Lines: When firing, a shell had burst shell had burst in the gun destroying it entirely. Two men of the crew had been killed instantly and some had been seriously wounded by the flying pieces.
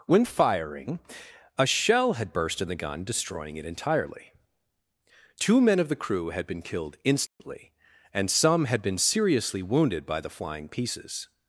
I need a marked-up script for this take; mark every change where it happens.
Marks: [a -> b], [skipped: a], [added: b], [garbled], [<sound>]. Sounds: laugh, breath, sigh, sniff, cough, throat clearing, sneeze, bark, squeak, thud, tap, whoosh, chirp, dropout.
When firing, a shell had burst [skipped: shell had burst] in the gun destroying it entirely. Two men of the crew had been killed instantly [dropout] and some had been seriously wounded by the flying pieces.